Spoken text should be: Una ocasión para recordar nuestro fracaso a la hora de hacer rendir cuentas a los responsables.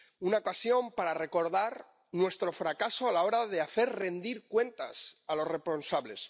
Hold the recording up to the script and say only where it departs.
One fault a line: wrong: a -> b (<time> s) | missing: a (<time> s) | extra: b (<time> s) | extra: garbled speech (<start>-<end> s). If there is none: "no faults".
no faults